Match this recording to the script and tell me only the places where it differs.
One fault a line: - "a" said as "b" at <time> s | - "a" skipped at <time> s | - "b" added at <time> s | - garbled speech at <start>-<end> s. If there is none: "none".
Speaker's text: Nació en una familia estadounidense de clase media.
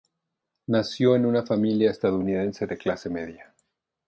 none